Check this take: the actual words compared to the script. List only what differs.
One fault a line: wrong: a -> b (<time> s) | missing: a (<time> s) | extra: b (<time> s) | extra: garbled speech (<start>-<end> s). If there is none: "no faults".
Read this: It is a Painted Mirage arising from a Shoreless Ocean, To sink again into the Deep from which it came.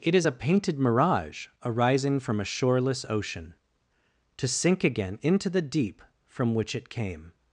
no faults